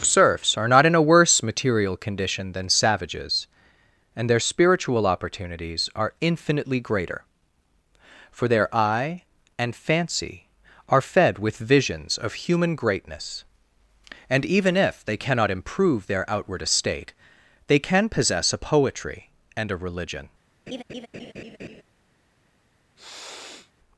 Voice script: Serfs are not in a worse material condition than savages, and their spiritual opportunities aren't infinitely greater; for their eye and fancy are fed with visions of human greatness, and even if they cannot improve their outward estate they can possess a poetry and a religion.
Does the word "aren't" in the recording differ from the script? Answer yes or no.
yes